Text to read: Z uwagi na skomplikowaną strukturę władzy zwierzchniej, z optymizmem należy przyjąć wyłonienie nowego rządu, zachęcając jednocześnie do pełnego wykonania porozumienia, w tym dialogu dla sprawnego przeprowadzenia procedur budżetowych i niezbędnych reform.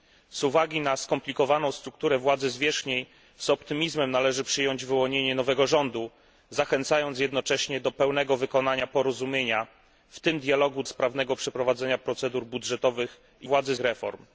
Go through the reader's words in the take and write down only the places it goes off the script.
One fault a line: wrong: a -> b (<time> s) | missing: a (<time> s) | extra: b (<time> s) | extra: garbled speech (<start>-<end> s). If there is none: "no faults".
missing: dla (10.8 s)
wrong: niezbędnych -> władzy (13.4 s)